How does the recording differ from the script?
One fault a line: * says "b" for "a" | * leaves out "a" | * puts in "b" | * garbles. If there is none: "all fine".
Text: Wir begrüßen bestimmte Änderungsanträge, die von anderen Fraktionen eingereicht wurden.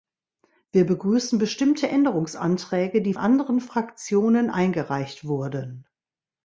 * leaves out "von"